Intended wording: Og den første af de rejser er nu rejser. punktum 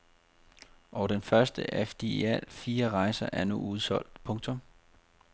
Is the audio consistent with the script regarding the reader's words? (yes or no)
no